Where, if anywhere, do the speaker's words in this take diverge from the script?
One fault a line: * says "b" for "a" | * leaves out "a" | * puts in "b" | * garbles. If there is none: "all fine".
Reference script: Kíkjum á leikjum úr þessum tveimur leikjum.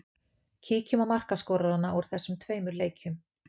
* says "markaskorarana" for "leikjum"